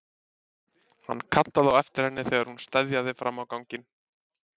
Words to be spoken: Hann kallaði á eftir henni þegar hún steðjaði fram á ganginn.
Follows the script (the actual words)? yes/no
yes